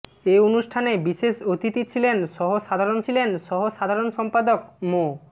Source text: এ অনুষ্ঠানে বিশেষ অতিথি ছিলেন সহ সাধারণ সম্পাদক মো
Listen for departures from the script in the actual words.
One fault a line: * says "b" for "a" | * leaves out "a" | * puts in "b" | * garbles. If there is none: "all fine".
* puts in "ছিলেন সহ সাধারণ"